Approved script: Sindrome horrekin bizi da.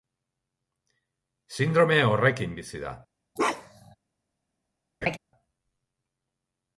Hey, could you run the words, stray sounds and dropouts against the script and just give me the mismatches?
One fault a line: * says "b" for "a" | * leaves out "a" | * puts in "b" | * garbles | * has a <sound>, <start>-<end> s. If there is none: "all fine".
* has a bark, 3.4-4.0 s
* has a laugh, 5.0-5.2 s